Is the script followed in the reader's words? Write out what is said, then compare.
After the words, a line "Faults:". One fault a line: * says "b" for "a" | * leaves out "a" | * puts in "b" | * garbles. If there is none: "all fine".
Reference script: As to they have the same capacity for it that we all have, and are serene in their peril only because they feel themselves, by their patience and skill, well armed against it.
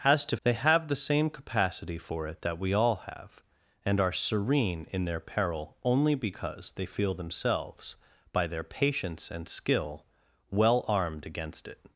As to they have the same capacity for it that we all have, and are serene in their peril only because they feel themselves, by their patience and skill, well armed against it.
Faults:
all fine